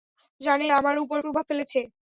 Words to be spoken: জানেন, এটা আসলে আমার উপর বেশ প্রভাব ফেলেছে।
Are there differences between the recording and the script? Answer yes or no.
yes